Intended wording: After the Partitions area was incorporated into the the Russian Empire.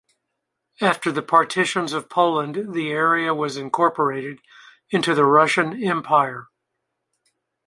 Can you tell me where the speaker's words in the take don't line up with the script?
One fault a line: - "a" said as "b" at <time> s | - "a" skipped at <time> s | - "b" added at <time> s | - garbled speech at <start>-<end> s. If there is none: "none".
- "of Poland the" added at 1.9 s
- "the" skipped at 5.2 s